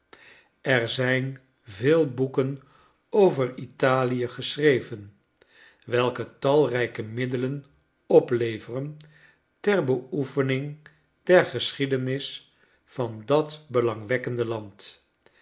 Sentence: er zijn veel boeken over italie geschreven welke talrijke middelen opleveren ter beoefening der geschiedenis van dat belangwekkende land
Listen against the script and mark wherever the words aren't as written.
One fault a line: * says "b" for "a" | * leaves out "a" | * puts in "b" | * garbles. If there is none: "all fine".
all fine